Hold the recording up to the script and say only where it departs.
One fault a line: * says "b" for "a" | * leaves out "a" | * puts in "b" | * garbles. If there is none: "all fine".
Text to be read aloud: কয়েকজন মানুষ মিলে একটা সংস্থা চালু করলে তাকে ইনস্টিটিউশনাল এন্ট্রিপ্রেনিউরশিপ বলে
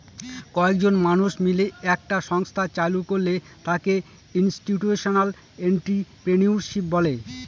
all fine